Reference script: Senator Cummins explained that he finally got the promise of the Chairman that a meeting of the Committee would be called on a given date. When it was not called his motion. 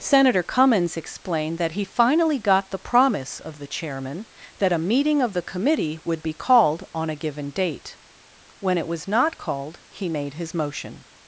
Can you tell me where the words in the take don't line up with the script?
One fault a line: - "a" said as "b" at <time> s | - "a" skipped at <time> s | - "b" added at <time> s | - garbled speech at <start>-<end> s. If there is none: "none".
- "he made" added at 9.9 s